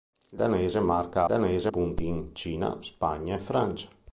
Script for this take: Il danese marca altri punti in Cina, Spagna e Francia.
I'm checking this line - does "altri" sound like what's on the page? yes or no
no